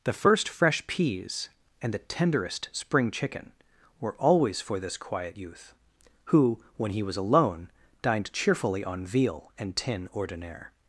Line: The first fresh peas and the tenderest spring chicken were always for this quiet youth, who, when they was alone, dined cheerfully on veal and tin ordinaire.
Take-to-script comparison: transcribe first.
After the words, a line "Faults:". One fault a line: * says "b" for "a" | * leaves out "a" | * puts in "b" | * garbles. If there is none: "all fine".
The first fresh peas and the tenderest spring chicken were always for this quiet youth, who, when he was alone, dined cheerfully on veal and tin ordinaire.
Faults:
* says "he" for "they"